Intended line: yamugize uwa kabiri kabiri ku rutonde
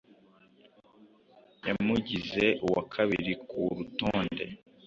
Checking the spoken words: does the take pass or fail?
fail